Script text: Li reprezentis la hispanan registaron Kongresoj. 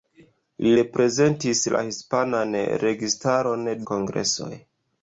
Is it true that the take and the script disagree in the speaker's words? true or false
false